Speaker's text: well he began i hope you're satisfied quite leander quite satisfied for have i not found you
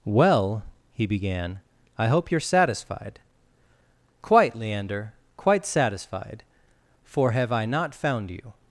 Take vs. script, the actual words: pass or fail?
pass